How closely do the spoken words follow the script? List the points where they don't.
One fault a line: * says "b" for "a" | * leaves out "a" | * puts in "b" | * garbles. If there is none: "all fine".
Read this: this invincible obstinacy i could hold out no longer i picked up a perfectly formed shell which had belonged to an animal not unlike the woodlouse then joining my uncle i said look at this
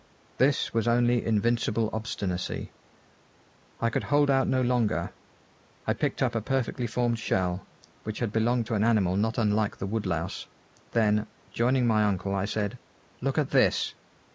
* puts in "was only"